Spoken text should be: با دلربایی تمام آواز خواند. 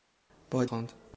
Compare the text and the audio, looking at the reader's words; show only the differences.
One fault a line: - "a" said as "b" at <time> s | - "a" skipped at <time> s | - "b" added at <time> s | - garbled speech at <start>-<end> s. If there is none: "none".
- "دلربایی تمام آواز" skipped at 0.7 s